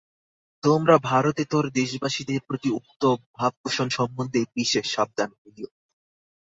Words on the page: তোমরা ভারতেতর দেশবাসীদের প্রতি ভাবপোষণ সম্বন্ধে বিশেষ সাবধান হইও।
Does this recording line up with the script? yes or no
no